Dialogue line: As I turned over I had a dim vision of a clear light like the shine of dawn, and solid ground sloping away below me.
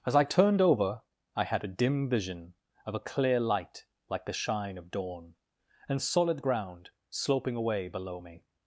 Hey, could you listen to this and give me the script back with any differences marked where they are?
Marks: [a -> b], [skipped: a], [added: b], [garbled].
As I turned over I had a dim vision of a clear light like the shine of dawn, and solid ground sloping away below me.